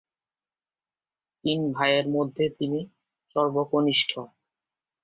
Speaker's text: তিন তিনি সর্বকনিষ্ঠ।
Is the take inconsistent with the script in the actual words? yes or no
yes